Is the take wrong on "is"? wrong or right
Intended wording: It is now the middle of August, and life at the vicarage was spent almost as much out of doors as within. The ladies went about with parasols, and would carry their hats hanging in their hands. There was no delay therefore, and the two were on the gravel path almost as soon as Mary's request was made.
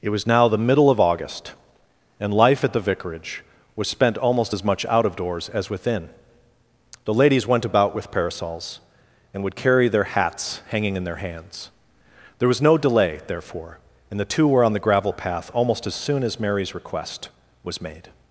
wrong